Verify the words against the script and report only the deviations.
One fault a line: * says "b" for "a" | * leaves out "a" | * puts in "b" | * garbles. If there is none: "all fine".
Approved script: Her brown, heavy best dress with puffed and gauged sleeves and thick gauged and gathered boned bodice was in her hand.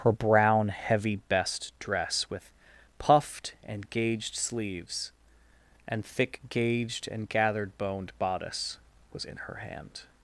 all fine